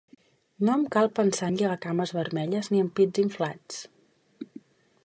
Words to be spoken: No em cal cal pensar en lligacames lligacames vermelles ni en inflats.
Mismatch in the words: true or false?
true